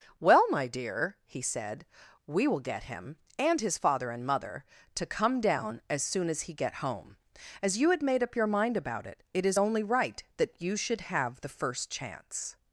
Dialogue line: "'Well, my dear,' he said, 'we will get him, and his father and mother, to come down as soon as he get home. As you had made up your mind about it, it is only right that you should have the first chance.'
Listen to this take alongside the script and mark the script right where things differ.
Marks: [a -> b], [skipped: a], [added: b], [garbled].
"'Well, my dear,' he said, 'we will get him, and his father and mother, to come down as soon as he get home. As you had made up your mind about it, it is only right that you should have the first chance.'